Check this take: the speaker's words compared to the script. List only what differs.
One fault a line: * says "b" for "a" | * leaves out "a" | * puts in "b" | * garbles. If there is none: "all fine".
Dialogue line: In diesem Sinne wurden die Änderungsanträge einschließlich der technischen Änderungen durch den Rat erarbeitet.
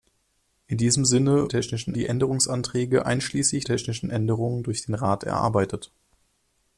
* says "technischen" for "wurden"
* leaves out "der"